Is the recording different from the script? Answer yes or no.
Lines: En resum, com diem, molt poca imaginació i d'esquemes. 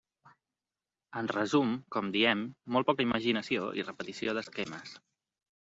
yes